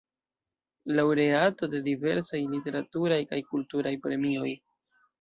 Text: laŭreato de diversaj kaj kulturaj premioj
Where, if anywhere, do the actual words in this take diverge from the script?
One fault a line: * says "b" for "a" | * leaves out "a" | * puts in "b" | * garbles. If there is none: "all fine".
* puts in "literaturaj"